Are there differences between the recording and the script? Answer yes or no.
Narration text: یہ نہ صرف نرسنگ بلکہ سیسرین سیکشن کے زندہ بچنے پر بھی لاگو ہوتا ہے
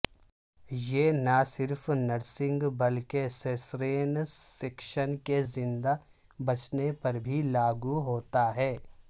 no